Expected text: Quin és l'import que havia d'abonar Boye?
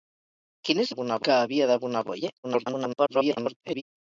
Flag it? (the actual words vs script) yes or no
yes